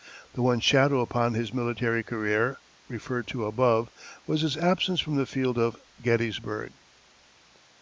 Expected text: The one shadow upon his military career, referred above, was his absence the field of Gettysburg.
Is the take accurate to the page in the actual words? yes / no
no